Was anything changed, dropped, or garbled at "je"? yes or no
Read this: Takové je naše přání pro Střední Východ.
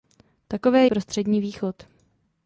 yes